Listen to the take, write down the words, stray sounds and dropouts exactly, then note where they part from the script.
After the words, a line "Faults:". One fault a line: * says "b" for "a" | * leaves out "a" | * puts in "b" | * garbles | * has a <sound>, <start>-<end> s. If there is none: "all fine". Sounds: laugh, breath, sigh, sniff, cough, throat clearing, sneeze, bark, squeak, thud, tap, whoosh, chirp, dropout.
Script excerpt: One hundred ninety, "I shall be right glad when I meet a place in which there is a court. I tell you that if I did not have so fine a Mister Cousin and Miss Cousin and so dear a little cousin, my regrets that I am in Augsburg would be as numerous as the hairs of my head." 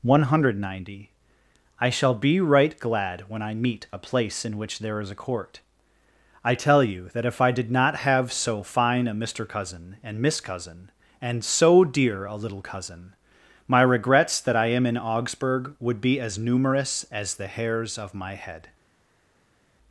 One hundred ninety, "I shall be right glad when I meet a place in which there is a court. I tell you that if I did not have so fine a Mister Cousin and Miss Cousin and so dear a little cousin, my regrets that I am in Augsburg would be as numerous as the hairs of my head."
Faults:
all fine